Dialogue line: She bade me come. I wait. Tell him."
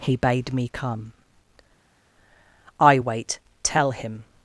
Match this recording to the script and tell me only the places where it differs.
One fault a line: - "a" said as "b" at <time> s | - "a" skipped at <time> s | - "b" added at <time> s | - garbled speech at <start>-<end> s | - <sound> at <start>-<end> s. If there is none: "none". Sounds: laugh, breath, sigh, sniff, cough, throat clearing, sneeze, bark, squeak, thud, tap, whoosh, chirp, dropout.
- "She" said as "He" at 0.0 s